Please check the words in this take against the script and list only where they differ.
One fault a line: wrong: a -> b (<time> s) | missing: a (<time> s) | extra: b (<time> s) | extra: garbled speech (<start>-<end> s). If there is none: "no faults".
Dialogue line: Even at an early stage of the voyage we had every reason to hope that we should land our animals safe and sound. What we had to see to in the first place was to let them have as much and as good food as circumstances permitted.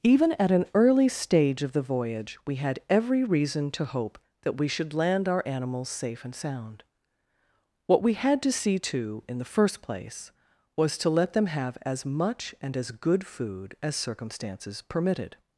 no faults